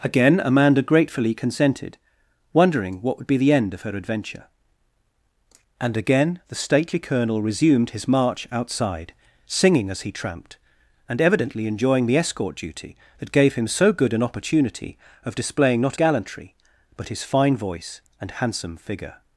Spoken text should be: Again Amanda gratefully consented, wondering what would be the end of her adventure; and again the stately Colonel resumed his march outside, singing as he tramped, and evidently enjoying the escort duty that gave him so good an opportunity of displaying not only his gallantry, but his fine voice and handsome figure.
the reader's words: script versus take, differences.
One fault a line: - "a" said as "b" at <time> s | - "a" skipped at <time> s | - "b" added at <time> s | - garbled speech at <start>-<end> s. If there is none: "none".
- "only his" skipped at 16.0 s